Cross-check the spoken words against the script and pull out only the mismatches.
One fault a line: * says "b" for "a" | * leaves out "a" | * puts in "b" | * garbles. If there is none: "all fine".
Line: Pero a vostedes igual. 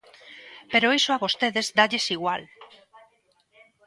* puts in "iso"
* puts in "dálles"